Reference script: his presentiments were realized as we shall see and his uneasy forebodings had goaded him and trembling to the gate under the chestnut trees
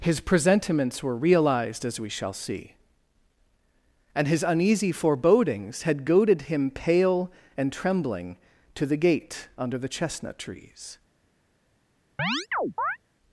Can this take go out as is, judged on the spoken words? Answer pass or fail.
fail